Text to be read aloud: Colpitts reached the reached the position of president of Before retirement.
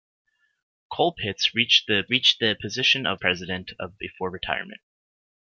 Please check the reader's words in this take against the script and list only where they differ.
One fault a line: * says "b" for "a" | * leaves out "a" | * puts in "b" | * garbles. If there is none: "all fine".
all fine